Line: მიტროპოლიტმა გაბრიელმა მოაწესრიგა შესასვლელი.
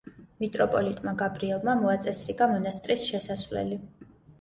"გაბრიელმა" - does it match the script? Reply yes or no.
yes